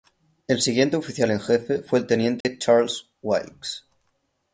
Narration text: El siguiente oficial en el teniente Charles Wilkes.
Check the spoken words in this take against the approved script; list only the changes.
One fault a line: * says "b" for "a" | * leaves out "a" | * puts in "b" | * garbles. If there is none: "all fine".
* puts in "jefe fue"